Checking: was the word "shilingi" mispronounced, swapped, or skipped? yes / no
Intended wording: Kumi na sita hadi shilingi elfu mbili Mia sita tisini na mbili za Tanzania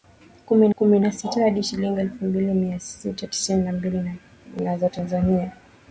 no